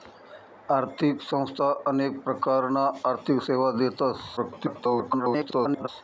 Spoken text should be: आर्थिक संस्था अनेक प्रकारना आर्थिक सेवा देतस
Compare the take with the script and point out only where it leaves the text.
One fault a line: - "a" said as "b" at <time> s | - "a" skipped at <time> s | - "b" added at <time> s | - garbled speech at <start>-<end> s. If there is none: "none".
- garbled speech at 4.4-5.9 s